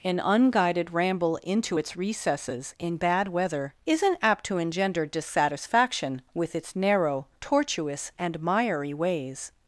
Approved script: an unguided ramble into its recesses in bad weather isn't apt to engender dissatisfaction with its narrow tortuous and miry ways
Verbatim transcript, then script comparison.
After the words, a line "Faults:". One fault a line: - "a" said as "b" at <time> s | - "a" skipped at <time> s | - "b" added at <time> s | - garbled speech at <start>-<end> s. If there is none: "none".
an unguided ramble into its recesses in bad weather isn't apt to engender dissatisfaction with its narrow tortuous and miry ways
Faults:
none